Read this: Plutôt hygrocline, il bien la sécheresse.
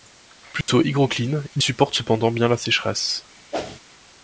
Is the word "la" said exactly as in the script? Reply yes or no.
yes